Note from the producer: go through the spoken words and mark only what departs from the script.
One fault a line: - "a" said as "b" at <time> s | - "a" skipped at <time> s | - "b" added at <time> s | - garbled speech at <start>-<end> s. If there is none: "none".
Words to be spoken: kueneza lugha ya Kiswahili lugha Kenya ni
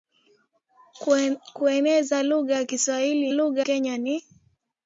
none